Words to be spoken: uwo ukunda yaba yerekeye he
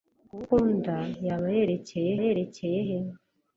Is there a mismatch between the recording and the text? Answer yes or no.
yes